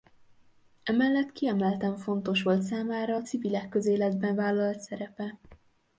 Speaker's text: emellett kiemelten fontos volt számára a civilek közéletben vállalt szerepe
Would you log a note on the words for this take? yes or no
no